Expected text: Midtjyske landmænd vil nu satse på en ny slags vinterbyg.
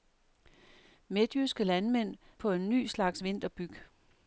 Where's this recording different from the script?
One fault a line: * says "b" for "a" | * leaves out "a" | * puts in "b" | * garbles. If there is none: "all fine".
* leaves out "vil nu satse"